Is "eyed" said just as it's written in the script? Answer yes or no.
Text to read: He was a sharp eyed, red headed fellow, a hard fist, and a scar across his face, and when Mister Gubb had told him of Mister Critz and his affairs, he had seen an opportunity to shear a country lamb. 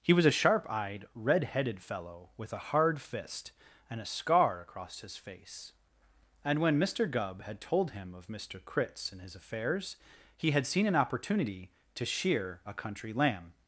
yes